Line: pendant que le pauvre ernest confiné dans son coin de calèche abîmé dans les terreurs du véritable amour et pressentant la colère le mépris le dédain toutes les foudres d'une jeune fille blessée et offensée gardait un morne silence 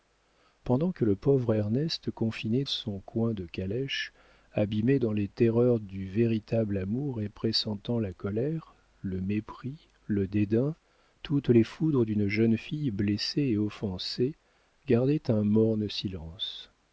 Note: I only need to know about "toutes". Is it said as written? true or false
true